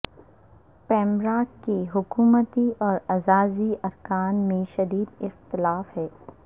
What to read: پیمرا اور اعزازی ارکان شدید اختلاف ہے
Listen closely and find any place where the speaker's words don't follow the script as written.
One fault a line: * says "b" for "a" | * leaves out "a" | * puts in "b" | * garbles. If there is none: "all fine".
* puts in "کے حکومتی"
* puts in "میں"